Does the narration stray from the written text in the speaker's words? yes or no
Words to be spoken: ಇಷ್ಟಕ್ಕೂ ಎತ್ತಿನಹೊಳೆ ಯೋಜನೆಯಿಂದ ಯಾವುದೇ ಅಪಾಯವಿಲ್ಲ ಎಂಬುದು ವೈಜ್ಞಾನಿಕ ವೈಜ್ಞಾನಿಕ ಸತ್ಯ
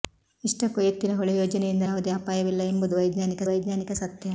no